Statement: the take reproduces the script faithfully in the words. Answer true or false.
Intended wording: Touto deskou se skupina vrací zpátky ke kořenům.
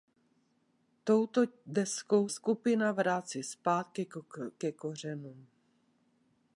false